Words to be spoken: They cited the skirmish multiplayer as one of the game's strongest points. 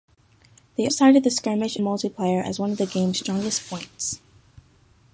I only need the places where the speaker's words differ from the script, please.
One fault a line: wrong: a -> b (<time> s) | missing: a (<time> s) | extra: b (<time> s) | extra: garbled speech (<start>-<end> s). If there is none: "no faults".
no faults